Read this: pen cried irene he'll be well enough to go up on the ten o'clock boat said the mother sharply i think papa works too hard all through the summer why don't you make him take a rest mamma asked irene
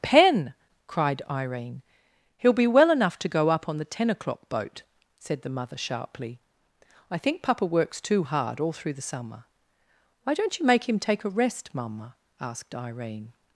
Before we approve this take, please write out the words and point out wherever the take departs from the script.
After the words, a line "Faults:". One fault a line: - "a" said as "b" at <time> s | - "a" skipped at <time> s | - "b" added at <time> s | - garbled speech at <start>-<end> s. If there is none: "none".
pen cried irene he'll be well enough to go up on the ten o'clock boat said the mother sharply i think papa works too hard all through the summer why don't you make him take a rest mamma asked irene
Faults:
none